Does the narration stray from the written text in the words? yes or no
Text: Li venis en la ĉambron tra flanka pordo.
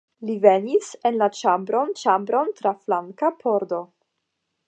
yes